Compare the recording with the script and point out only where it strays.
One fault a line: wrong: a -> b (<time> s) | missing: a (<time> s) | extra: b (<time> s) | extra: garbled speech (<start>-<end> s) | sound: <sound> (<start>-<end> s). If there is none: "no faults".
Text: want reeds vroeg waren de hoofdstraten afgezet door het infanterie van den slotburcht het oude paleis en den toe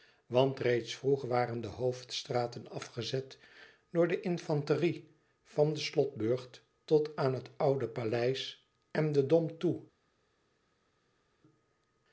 wrong: het -> de (4.1 s)
extra: tot aan (6.8 s)
extra: dom (9.3 s)